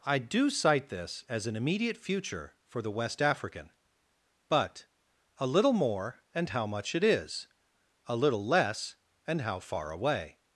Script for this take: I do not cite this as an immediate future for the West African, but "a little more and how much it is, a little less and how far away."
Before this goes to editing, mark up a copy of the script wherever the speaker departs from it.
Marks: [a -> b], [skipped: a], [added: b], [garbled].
I do [skipped: not] cite this as an immediate future for the West African, but "a little more and how much it is, a little less and how far away."